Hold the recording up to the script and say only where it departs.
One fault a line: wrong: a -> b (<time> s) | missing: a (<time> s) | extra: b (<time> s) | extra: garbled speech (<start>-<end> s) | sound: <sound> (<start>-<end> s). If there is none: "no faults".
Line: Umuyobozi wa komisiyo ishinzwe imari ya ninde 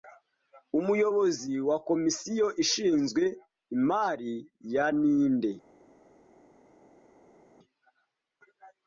no faults